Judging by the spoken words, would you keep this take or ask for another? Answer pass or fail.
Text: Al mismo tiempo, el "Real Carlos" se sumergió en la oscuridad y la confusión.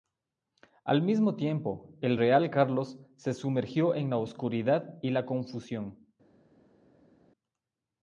pass